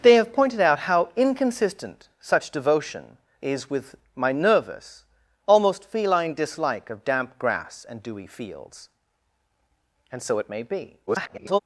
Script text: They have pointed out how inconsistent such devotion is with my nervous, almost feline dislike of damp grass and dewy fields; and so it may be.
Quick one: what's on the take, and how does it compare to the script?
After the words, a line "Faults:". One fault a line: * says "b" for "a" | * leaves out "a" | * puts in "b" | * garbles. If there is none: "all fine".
They have pointed out how inconsistent such devotion is with my nervous, almost feline dislike of damp grass and dewy fields; and so it may be. [garbled]
Faults:
* garbles